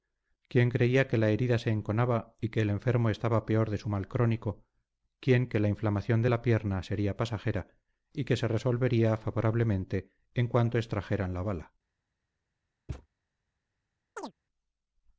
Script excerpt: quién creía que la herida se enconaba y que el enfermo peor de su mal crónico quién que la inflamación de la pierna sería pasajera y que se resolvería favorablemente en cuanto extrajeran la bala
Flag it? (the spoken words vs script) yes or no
yes